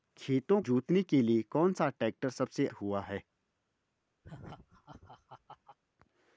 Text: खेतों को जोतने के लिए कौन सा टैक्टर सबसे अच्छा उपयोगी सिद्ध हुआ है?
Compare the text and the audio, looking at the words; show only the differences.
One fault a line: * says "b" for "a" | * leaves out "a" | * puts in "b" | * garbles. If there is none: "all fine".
* leaves out "को"
* leaves out "अच्छा उपयोगी सिद्ध"